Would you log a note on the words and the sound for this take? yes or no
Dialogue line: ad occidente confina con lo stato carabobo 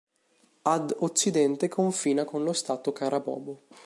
no